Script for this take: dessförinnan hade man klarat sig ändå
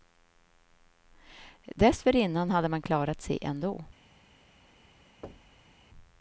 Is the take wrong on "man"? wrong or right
right